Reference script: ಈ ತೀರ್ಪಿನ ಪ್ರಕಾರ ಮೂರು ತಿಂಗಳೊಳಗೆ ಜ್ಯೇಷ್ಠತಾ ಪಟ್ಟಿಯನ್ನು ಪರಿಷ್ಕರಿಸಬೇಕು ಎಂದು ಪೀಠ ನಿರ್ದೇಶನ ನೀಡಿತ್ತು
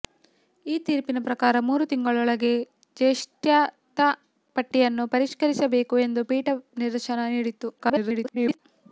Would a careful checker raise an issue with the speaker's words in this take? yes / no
yes